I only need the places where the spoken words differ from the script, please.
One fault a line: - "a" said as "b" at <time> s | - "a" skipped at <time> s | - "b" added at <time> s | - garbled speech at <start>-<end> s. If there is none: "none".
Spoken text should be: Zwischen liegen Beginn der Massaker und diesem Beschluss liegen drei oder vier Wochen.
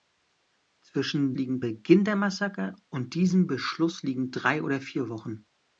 none